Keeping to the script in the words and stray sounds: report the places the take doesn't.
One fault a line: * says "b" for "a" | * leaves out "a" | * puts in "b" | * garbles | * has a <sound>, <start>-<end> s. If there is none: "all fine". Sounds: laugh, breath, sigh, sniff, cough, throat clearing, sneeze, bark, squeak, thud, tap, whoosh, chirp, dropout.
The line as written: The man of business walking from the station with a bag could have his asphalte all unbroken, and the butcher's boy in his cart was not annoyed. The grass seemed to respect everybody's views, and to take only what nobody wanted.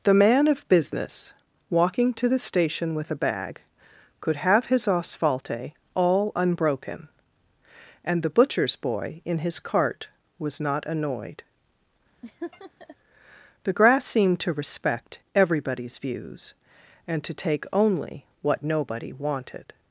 * says "to" for "from"
* has a laugh, 12.2-13.0 s